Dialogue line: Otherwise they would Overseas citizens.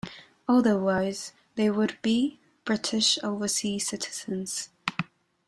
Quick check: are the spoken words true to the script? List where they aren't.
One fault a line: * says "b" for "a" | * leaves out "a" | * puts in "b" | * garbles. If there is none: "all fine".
* puts in "be British"